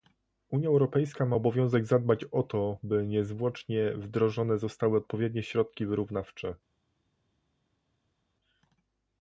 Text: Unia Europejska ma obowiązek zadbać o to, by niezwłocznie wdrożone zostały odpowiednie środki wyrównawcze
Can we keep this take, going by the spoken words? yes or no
yes